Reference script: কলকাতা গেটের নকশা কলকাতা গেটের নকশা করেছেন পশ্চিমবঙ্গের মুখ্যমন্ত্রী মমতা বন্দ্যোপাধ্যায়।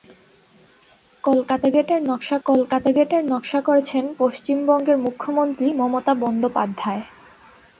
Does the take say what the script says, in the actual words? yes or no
yes